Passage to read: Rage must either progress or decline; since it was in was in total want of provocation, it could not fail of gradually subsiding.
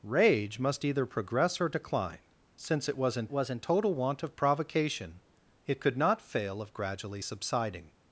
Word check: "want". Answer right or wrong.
right